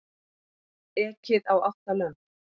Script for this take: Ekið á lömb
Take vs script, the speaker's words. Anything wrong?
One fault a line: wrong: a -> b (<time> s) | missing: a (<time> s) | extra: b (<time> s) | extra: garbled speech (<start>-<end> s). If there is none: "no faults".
extra: átta (1.7 s)